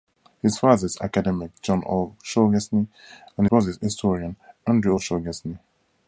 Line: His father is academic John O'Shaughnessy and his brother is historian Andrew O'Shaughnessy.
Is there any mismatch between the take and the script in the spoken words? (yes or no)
yes